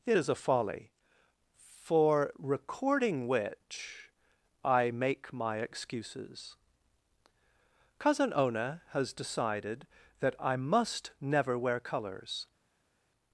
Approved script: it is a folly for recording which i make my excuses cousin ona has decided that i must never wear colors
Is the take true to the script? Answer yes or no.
yes